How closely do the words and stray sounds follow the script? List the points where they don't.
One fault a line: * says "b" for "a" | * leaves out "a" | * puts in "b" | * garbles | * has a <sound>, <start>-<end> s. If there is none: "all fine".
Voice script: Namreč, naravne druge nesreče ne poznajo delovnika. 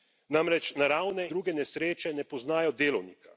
all fine